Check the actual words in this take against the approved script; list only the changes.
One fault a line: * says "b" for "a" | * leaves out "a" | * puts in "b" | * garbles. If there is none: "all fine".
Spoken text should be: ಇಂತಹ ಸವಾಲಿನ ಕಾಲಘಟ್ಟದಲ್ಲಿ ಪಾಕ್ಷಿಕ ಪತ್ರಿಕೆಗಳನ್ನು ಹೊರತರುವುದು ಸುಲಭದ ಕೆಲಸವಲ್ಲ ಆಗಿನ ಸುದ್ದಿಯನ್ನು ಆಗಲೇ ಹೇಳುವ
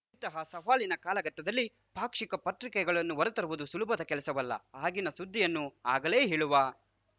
all fine